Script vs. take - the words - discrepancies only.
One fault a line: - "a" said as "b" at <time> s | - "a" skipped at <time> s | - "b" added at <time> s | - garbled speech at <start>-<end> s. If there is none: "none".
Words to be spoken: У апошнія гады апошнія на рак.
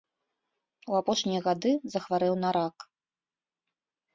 - "апошнія" said as "захварэў" at 2.0 s